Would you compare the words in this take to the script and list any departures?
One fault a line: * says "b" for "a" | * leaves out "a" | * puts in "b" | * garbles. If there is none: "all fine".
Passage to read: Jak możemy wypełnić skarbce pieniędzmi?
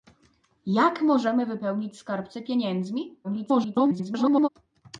* garbles